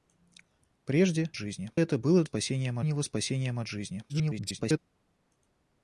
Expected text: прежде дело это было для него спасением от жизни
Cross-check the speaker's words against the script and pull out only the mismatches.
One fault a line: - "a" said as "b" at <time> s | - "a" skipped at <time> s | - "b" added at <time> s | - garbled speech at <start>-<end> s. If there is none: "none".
- "дело" said as "жизни" at 1.4 s
- "для" said as "спасением" at 2.2 s
- garbled speech at 4.1-4.8 s